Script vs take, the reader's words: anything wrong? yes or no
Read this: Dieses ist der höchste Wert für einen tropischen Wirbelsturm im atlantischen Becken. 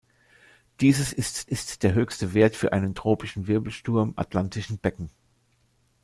yes